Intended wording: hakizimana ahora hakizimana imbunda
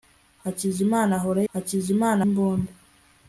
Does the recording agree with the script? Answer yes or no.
yes